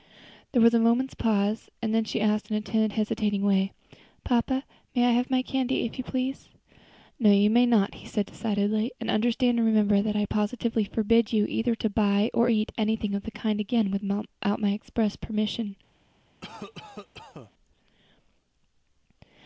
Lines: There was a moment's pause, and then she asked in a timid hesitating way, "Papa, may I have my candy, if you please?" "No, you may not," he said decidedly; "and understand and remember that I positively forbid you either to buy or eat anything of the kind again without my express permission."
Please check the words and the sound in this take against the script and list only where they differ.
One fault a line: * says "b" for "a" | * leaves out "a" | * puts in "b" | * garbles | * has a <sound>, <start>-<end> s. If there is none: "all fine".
* has a cough, 16.4-17.5 s